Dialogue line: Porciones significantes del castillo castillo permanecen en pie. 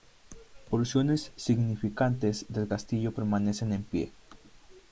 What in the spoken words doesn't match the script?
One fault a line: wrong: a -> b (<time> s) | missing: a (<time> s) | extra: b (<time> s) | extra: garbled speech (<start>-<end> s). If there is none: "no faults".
missing: castillo (3.2 s)